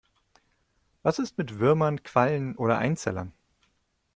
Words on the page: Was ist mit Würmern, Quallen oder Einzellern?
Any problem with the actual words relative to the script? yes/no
no